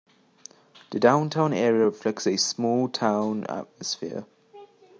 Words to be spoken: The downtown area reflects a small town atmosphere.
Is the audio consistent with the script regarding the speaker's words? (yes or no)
yes